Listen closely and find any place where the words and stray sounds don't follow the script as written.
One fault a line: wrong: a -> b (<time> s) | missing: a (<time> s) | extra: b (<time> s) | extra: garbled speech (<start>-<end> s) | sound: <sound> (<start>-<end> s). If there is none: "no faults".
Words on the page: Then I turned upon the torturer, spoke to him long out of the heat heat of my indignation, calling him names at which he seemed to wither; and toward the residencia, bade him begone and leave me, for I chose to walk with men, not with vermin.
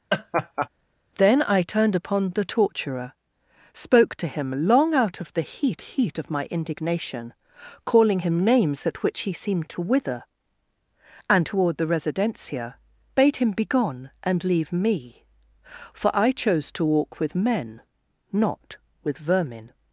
sound: laugh (0.1-0.7 s)